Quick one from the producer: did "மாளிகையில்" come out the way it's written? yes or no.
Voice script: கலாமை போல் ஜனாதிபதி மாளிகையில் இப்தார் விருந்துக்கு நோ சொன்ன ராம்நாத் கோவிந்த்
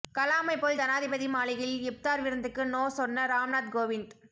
yes